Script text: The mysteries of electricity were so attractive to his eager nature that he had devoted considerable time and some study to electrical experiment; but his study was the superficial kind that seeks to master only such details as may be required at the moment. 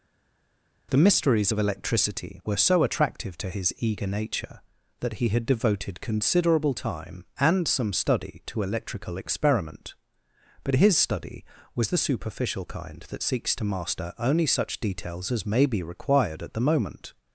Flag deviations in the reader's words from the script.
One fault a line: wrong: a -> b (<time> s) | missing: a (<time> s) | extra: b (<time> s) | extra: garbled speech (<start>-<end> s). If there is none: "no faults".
no faults